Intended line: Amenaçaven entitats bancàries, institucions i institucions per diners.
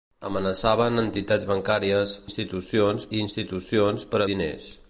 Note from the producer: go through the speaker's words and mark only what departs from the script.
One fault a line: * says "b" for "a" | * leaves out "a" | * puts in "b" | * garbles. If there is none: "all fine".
all fine